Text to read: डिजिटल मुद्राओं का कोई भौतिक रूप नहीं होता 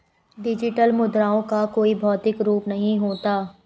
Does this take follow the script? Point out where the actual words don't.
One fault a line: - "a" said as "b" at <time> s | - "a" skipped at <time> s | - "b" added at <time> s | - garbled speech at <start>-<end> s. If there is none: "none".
none